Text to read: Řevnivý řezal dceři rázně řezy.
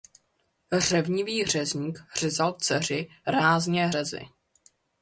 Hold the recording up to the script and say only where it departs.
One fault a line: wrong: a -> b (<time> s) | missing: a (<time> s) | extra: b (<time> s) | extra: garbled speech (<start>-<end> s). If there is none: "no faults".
extra: řezník (1.4 s)